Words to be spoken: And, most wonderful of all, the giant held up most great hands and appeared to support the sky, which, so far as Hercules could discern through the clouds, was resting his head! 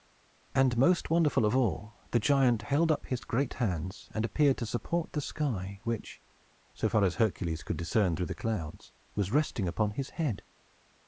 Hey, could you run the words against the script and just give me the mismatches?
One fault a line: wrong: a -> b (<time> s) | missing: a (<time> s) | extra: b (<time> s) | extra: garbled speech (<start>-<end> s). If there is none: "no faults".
wrong: most -> his (3.0 s)
extra: upon (9.7 s)